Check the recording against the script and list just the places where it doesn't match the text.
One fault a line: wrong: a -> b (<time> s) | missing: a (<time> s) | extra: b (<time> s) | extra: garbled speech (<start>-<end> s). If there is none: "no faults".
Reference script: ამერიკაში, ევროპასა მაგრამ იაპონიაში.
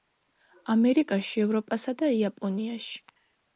wrong: მაგრამ -> და (2.0 s)